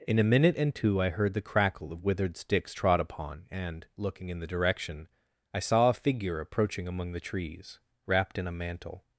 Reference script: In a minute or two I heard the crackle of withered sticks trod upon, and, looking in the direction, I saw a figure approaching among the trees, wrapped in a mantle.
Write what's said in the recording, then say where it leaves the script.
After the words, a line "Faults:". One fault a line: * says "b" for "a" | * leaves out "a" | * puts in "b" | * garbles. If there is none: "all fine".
In a minute and two I heard the crackle of withered sticks trod upon, and, looking in the direction, I saw a figure approaching among the trees, wrapped in a mantle.
Faults:
* says "and" for "or"